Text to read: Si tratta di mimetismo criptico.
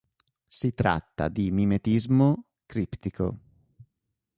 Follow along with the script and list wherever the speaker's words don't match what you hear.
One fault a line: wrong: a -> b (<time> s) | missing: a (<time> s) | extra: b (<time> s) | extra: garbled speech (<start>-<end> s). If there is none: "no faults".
no faults